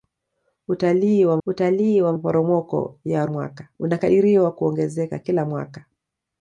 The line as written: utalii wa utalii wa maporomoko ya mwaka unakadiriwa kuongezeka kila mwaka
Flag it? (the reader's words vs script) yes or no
no